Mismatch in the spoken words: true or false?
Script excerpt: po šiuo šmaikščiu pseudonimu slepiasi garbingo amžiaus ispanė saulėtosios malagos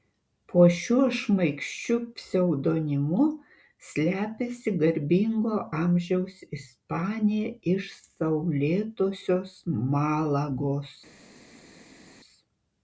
true